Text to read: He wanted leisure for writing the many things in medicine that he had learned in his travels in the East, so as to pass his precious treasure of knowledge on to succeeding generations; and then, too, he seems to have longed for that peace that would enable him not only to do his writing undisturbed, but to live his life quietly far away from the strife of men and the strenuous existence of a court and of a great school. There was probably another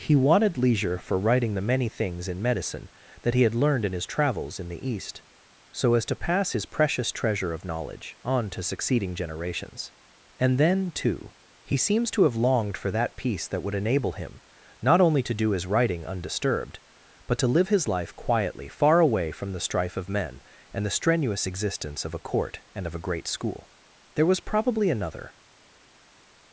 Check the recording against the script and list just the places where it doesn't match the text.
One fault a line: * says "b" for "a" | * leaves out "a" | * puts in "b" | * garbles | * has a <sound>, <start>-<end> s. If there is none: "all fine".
all fine